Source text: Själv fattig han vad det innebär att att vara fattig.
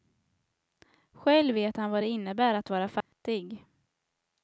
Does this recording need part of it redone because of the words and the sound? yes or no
yes